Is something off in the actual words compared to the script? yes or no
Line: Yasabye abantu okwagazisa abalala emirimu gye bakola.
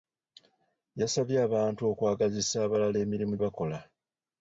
yes